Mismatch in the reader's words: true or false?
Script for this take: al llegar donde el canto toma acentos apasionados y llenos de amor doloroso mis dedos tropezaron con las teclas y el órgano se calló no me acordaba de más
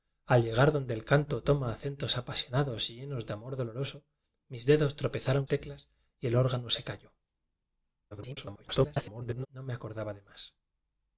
true